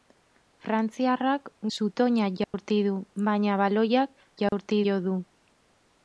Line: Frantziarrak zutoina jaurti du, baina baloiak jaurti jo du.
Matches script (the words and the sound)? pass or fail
fail